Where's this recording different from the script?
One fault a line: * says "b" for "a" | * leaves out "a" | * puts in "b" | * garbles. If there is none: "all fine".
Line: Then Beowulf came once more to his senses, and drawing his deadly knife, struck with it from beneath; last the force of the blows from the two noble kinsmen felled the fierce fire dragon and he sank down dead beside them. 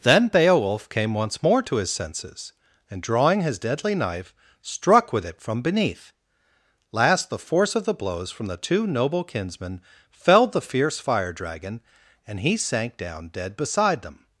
all fine